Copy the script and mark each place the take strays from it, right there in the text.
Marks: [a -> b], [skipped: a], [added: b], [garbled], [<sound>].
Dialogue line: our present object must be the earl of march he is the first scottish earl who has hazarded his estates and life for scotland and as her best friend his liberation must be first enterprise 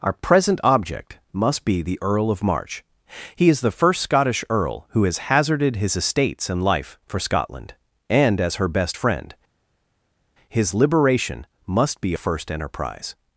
our present object must be the earl of march he is the first scottish earl who has hazarded his estates and life for scotland and as her best friend his liberation must be first enterprise